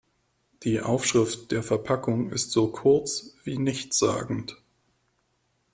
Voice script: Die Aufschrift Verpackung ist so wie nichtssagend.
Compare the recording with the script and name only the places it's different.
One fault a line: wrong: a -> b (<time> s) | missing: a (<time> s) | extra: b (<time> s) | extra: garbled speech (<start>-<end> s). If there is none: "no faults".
extra: der (1.5 s)
extra: kurz (2.7 s)